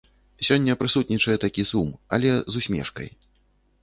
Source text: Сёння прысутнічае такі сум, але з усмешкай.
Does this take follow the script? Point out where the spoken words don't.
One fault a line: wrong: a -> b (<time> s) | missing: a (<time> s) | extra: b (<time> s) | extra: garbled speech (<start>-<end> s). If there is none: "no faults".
no faults